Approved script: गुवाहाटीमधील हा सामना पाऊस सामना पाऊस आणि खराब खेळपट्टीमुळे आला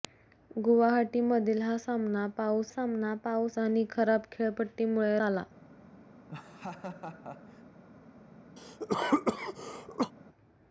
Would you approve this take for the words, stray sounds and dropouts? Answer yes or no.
no